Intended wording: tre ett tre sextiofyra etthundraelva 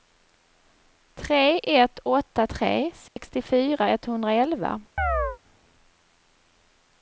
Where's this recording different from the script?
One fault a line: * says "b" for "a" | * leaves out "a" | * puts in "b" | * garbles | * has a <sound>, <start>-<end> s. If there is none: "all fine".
* puts in "åtta"
* has a dropout, 3.1-3.2 s
* has a chirp, 5.0-5.4 s